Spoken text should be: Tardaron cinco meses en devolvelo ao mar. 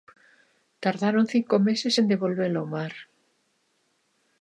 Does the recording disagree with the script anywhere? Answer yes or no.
no